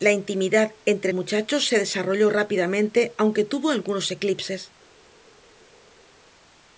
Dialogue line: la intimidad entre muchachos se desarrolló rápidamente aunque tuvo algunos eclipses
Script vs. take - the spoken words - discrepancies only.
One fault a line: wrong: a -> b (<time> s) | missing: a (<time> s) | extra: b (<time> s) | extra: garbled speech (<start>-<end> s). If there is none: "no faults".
no faults